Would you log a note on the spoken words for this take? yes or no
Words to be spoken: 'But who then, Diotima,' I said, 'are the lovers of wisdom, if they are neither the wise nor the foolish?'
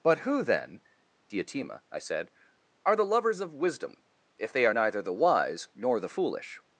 no